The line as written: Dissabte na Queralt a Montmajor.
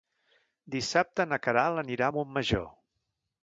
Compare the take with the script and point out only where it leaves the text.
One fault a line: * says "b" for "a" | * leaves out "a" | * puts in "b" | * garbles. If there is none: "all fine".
* puts in "anirà"